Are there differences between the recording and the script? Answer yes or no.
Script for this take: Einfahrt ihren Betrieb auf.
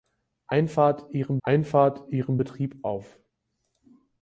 yes